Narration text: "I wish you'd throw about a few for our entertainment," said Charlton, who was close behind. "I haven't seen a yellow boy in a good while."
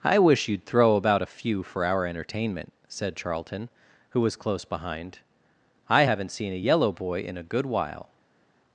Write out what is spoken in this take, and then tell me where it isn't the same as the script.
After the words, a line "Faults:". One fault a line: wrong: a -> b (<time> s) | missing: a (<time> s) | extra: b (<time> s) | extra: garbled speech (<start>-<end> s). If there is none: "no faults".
"I wish you'd throw about a few for our entertainment," said Charlton, who was close behind. "I haven't seen a yellow boy in a good while."
Faults:
no faults